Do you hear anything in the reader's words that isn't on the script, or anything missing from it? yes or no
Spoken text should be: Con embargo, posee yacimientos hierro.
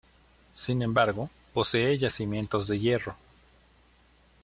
yes